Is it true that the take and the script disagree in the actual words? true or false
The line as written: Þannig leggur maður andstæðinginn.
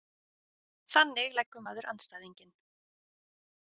false